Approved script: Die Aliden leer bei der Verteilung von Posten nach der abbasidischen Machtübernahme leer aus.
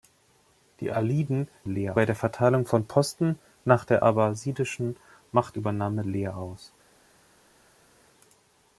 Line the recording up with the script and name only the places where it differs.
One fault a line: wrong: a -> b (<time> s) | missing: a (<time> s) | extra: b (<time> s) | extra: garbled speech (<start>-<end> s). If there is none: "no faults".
no faults